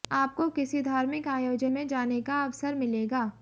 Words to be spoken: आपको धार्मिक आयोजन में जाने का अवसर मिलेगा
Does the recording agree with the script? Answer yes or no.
no